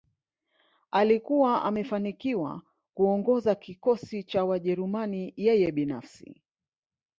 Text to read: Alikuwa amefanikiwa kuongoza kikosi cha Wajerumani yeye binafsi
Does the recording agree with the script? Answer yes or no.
yes